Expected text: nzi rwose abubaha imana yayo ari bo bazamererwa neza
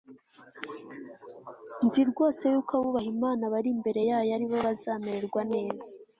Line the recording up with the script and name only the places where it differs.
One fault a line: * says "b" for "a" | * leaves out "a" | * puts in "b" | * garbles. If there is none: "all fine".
* puts in "yuko"
* puts in "bari imbere"